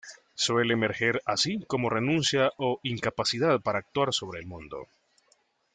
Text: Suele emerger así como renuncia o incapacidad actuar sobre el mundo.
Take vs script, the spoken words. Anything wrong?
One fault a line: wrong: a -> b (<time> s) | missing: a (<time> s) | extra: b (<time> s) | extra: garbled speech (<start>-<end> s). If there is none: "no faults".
extra: para (3.6 s)